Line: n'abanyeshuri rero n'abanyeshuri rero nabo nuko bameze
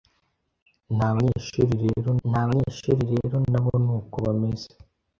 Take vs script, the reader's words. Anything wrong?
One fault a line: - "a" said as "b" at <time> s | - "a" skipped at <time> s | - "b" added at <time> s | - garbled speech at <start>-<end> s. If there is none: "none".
none